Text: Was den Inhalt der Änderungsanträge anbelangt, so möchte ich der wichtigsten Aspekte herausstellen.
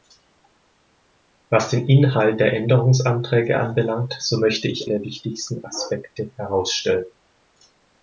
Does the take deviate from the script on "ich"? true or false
false